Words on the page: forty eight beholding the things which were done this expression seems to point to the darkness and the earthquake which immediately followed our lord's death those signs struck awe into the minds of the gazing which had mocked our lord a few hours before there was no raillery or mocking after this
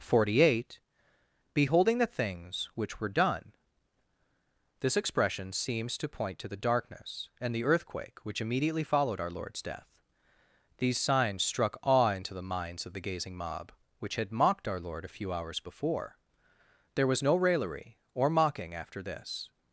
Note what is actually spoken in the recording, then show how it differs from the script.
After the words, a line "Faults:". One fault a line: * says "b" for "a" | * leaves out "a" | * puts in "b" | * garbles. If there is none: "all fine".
forty eight beholding the things which were done this expression seems to point to the darkness and the earthquake which immediately followed our lord's death these signs struck awe into the minds of the gazing mob which had mocked our lord a few hours before there was no raillery or mocking after this
Faults:
* says "these" for "those"
* puts in "mob"